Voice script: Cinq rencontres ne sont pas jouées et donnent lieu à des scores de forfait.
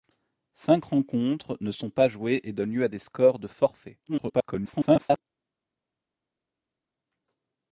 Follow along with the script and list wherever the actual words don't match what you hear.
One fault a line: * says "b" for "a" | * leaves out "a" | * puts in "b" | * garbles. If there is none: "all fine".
* garbles